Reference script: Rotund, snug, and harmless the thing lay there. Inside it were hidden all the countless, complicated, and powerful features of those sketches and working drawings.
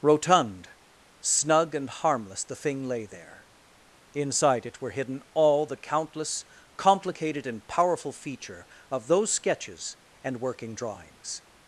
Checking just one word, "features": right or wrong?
wrong